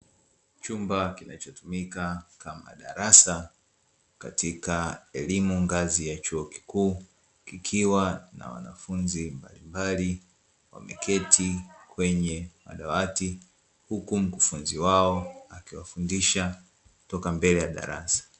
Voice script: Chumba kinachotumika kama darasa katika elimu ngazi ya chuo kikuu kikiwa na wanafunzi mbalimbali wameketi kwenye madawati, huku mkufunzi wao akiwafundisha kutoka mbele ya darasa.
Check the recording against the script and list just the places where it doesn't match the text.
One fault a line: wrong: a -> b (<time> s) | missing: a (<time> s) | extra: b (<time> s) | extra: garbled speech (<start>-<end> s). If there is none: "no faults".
no faults